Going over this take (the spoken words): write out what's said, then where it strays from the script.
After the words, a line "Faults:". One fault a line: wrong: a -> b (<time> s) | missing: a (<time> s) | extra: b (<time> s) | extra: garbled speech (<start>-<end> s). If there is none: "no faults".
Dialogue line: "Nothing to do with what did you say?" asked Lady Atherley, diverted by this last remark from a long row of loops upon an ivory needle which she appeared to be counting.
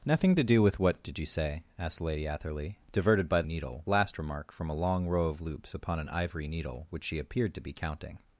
"Nothing to do with what did you say?" asked Lady Atherley, diverted by needle last remark from a long row of loops upon an ivory needle which she appeared to be counting.
Faults:
wrong: this -> needle (3.5 s)